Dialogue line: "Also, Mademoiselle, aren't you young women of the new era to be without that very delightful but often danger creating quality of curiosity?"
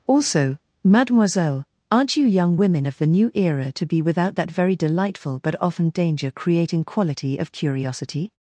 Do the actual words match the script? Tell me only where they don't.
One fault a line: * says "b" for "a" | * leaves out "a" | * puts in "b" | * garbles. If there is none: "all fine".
all fine